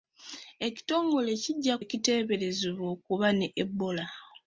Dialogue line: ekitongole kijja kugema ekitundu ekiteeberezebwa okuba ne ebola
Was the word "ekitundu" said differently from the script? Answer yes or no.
yes